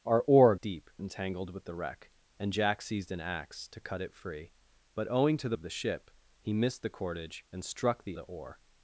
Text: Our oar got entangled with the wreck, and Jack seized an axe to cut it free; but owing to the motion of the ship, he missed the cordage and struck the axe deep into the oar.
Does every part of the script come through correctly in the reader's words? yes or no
no